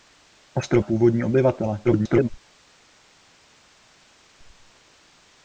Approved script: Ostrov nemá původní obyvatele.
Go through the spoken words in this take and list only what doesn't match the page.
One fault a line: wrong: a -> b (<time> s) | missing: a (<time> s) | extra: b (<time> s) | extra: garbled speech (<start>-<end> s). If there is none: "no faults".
missing: nemá (0.8 s)
extra: garbled speech (1.8-2.3 s)